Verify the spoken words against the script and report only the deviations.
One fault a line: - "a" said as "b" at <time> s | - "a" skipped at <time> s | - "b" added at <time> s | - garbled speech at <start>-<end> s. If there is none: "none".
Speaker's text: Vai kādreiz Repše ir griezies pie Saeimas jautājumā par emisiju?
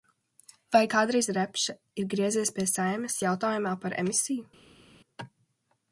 none